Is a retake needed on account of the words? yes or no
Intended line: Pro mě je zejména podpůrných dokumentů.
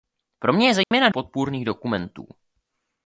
no